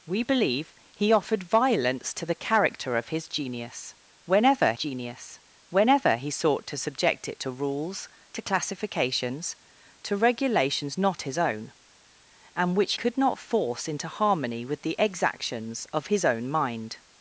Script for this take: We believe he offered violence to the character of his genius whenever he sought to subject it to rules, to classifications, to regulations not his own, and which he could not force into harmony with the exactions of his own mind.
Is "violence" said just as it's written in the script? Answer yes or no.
yes